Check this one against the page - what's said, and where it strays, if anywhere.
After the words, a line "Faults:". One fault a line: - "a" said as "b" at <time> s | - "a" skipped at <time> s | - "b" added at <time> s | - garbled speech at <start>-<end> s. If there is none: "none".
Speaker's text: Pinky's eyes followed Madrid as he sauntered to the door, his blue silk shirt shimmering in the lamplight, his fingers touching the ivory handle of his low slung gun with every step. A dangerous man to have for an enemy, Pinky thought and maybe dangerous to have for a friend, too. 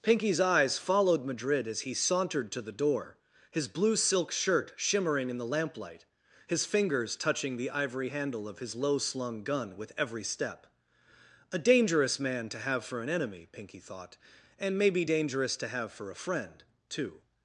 Pinky's eyes followed Madrid as he sauntered to the door, his blue silk shirt shimmering in the lamplight, his fingers touching the ivory handle of his low slung gun with every step. A dangerous man to have for an enemy, Pinky thought and maybe dangerous to have for a friend, too.
Faults:
none